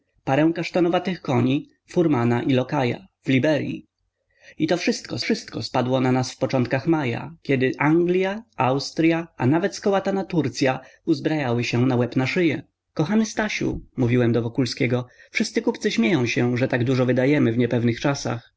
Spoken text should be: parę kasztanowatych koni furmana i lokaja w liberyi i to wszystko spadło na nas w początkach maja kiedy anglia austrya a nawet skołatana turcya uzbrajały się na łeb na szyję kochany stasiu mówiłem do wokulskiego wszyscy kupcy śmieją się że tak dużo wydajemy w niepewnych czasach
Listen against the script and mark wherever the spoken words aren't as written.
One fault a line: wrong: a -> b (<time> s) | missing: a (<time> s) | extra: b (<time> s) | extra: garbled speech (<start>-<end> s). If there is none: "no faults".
extra: wszystko (5.2 s)